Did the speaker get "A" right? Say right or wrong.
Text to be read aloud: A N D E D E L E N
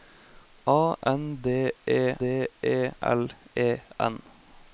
right